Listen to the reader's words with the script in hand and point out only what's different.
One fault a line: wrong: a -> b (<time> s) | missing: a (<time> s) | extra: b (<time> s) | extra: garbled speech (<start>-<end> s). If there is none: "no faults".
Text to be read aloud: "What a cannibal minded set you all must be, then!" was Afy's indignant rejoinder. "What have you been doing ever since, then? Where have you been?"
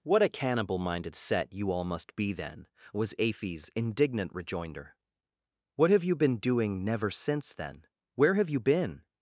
wrong: ever -> never (6.8 s)